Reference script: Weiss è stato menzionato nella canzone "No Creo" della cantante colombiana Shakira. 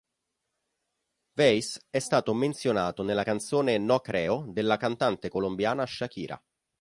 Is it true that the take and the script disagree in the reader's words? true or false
false